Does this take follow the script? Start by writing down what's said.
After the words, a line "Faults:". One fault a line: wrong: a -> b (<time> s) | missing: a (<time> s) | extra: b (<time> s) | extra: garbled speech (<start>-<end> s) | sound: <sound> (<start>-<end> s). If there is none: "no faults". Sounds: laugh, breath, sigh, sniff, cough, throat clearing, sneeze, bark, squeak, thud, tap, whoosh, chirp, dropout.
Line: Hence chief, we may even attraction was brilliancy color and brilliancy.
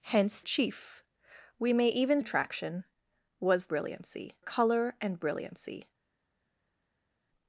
Hence chief, we may even attraction was brilliancy color and brilliancy.
Faults:
no faults